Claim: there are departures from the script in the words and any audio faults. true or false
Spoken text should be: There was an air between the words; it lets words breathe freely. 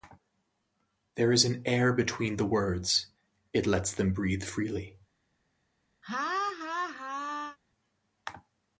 true